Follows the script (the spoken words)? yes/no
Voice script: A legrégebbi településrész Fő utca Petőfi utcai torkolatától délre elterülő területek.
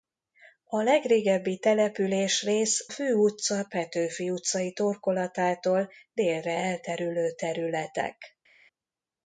yes